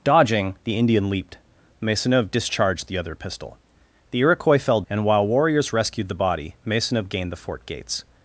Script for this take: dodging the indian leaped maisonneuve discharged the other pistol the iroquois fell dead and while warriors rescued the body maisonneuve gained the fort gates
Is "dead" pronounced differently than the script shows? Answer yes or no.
yes